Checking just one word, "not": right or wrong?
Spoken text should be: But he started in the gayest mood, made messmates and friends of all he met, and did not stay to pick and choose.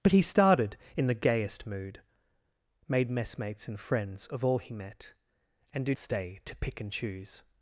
wrong